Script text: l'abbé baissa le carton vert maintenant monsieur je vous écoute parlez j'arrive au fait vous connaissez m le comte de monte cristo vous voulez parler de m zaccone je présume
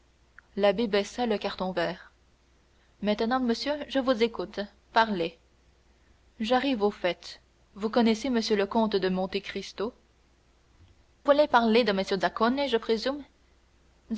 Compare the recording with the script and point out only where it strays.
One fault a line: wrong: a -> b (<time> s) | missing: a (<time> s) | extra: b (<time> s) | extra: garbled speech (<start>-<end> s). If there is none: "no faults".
missing: vous (9.9 s)